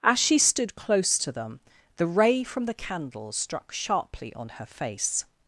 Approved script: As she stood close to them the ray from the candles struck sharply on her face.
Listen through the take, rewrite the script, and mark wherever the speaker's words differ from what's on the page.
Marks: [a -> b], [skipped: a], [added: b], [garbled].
As she stood close to them the ray from the candles struck sharply on her face.